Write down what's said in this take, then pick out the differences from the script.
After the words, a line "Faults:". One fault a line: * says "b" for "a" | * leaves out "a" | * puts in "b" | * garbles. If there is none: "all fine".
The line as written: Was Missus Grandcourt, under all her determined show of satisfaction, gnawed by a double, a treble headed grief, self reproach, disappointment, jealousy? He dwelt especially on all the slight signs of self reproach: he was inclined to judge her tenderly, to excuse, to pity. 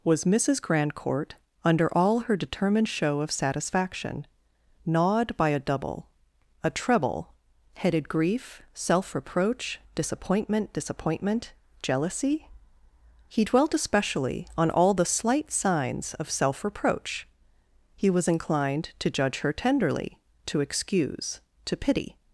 Was Missus Grandcourt, under all her determined show of satisfaction, gnawed by a double, a treble headed grief, self reproach, disappointment disappointment, jealousy? He dwelt especially on all the slight signs of self reproach: he was inclined to judge her tenderly, to excuse, to pity.
Faults:
* puts in "disappointment"